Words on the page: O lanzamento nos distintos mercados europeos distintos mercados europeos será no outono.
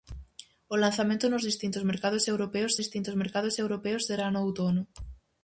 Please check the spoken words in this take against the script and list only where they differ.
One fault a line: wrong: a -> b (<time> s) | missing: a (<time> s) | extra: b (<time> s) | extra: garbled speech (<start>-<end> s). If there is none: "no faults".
no faults